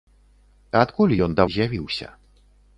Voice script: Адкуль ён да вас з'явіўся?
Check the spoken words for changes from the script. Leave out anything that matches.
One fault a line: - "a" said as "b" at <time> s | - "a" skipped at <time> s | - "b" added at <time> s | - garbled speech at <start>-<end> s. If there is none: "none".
- "вас" skipped at 1.4 s